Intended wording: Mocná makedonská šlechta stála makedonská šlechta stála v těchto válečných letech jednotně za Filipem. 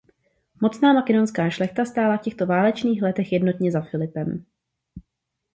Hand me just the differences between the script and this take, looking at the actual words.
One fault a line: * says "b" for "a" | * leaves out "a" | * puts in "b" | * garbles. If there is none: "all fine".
* leaves out "makedonská šlechta stála"